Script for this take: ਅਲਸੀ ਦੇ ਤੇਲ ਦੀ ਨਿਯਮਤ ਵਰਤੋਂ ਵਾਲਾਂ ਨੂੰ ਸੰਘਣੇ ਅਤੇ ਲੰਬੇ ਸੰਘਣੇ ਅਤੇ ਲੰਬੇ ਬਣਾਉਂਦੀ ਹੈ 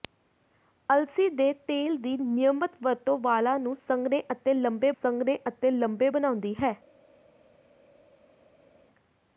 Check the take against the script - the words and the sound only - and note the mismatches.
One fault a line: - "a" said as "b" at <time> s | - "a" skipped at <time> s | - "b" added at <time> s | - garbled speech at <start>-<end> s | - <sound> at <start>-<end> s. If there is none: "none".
none